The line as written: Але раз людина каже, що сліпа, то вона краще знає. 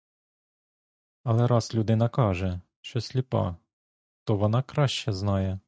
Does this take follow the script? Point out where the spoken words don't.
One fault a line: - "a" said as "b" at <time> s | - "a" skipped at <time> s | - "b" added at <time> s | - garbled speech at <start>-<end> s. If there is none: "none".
none